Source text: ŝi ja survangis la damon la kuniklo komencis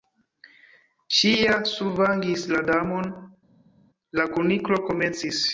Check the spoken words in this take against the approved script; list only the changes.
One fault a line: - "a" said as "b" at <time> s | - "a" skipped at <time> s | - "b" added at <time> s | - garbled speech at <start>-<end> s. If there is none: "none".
none